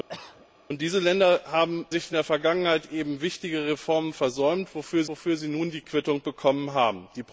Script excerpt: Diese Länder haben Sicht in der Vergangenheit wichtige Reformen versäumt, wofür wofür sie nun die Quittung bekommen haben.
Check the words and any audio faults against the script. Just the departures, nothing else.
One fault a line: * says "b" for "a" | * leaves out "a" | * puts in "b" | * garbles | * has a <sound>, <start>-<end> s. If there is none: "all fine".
* has a cough, 0.1-0.5 s